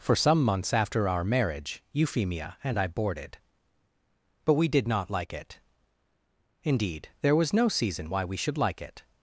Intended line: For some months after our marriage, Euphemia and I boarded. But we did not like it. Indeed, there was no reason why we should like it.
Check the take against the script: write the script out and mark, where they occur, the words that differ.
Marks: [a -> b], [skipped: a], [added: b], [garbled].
For some months after our marriage, Euphemia and I boarded. But we did not like it. Indeed, there was no [reason -> season] why we should like it.